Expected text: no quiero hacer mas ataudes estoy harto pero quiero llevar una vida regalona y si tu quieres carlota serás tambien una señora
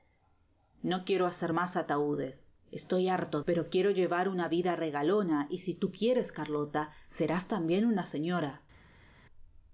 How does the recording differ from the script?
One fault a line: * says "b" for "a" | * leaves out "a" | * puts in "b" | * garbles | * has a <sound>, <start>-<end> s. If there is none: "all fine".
all fine